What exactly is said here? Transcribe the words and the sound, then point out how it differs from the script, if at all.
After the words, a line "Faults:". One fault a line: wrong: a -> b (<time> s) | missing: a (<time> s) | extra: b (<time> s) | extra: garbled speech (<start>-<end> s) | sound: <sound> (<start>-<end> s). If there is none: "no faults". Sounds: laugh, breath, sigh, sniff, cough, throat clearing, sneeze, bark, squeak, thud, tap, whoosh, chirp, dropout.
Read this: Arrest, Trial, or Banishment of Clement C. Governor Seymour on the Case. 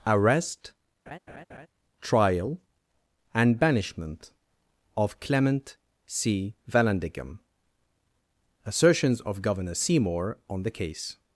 Arrest, Trial, and Banishment of Clement C. Vallandigham. Assertions of Governor Seymour on the Case.
Faults:
sound: laugh (1.1-1.7 s)
wrong: or -> and (3.3 s)
extra: Vallandigham Assertions of (6.7 s)